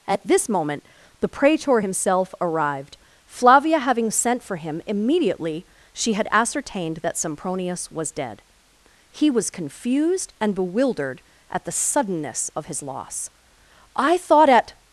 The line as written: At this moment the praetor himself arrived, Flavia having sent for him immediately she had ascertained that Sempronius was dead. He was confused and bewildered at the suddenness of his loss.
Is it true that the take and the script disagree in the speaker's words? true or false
true